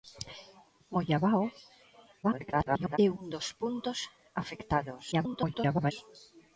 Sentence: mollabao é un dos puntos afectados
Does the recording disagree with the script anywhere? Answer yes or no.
yes